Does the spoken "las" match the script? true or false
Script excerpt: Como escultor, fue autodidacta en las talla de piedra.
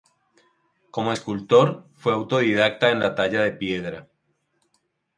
false